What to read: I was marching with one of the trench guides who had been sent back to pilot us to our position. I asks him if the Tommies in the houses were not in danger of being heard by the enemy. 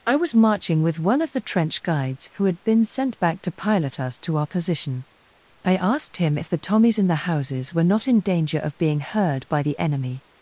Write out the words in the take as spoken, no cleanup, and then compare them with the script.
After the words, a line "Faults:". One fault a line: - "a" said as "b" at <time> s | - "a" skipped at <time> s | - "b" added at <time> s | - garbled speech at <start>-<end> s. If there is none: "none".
I was marching with one of the trench guides who had been sent back to pilot us to our position. I asked him if the Tommies in the houses were not in danger of being heard by the enemy.
Faults:
- "asks" said as "asked" at 5.8 s